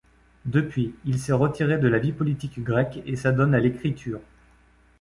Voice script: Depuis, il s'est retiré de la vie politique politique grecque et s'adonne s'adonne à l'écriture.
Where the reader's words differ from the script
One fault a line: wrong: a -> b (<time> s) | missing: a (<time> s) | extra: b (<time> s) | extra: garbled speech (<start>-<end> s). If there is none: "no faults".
missing: politique (2.6 s)
missing: s'adonne (3.5 s)